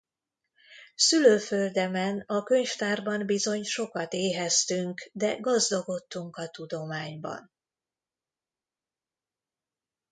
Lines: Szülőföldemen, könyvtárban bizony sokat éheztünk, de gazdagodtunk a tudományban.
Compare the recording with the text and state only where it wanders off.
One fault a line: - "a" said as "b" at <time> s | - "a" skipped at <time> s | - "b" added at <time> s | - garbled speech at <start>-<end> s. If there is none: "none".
- "a" added at 2.3 s